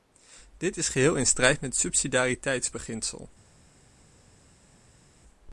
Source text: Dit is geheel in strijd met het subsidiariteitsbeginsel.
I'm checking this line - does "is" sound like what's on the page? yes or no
yes